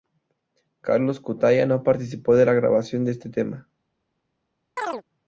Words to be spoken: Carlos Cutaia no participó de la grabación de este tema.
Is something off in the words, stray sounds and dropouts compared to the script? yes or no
yes